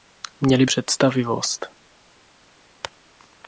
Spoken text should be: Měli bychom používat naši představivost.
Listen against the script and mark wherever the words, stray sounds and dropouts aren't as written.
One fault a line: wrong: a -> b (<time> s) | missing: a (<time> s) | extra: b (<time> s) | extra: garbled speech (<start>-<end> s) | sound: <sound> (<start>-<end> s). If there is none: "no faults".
missing: bychom používat naši (0.7 s)